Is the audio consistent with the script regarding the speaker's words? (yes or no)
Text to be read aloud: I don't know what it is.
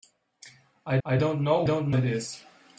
no